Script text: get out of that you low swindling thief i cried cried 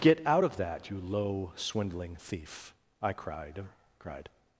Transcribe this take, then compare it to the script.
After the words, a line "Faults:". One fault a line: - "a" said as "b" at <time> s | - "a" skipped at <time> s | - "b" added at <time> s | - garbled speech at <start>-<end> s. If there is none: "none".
get out of that you low swindling thief i cried cried
Faults:
none